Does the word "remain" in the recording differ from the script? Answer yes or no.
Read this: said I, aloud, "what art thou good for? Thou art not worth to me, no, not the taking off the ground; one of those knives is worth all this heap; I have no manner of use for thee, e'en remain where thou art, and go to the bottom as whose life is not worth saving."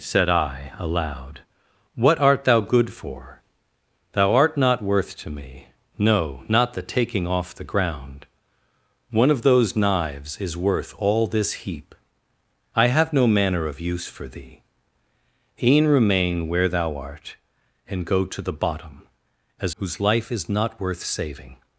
no